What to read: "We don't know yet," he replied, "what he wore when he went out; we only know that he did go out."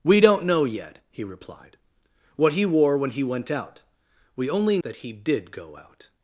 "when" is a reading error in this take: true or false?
false